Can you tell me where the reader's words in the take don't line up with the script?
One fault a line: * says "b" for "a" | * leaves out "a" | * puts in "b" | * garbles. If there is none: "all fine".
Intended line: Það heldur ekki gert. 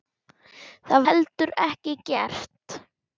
all fine